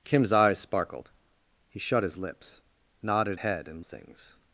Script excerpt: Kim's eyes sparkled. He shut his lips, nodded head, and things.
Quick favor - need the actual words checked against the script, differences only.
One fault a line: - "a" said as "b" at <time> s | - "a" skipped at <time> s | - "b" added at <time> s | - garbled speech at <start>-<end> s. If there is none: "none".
none